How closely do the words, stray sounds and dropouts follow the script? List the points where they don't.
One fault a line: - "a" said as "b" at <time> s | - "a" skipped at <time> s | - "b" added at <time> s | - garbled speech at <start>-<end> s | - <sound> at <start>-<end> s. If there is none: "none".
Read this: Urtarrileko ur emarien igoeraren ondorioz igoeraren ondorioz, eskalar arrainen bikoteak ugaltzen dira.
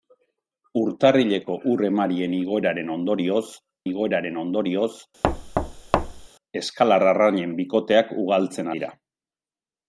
- thud at 5.2-6.3 s